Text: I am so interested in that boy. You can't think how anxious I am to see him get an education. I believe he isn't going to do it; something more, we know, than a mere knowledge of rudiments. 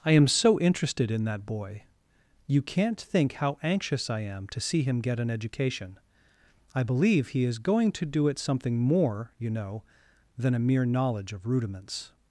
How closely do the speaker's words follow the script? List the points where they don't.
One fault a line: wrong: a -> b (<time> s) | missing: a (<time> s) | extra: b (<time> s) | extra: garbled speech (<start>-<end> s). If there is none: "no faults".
wrong: isn't -> is (7.4 s)
wrong: we -> you (9.4 s)